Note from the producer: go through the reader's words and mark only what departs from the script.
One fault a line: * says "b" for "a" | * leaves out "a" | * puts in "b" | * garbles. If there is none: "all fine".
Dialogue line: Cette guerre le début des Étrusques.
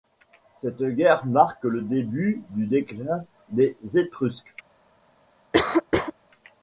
* puts in "marque"
* puts in "du déclin"